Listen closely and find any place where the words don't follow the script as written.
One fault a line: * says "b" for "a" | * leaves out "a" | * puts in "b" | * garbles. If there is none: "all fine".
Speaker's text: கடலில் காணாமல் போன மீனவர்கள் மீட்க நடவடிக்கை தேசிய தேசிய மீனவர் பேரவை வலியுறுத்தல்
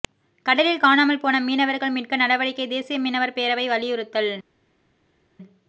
* leaves out "தேசிய"